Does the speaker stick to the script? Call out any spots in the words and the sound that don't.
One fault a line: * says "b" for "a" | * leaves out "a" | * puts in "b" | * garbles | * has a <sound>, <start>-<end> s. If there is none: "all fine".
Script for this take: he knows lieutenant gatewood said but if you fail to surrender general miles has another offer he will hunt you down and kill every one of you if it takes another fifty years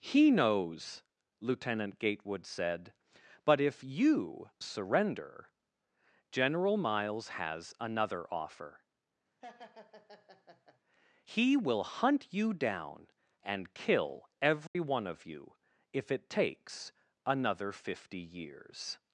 * leaves out "fail to"
* has a laugh, 9.4-10.8 s
* has a dropout, 14.7-14.8 s